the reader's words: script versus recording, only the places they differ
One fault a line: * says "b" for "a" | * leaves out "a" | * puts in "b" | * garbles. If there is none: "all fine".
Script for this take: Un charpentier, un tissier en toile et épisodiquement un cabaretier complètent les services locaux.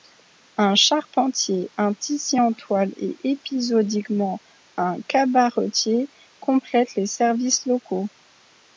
all fine